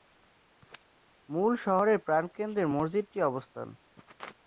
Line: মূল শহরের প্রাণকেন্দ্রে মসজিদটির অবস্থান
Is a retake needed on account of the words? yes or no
no